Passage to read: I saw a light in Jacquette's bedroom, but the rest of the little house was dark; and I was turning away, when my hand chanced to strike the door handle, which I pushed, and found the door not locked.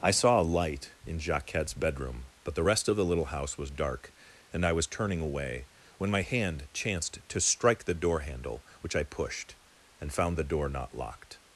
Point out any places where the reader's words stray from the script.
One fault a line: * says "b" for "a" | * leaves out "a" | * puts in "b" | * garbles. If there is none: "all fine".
all fine